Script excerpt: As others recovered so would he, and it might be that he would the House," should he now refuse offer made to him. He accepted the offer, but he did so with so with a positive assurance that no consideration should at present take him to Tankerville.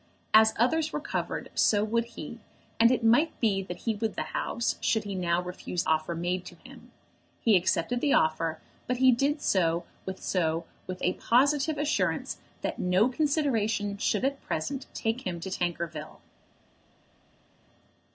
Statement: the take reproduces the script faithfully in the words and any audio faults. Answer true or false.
true